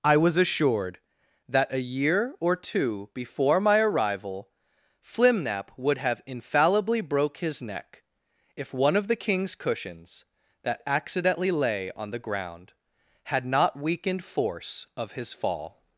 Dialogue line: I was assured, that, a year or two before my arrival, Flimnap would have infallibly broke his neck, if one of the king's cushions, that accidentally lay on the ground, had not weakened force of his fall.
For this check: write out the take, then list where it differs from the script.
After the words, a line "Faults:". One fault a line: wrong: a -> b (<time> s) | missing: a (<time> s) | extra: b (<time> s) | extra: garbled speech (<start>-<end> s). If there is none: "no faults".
I was assured, that, a year or two before my arrival, Flimnap would have infallibly broke his neck, if one of the king's cushions, that accidentally lay on the ground, had not weakened force of his fall.
Faults:
no faults